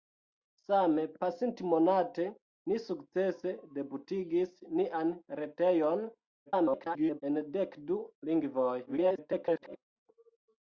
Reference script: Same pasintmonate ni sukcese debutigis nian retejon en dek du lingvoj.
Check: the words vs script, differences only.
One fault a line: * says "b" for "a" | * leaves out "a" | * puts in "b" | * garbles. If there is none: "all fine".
* garbles
* garbles